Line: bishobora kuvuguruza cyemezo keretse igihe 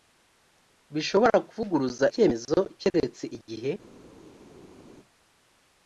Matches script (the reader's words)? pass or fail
pass